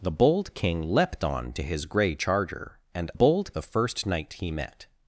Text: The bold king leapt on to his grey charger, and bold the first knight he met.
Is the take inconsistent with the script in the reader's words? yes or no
no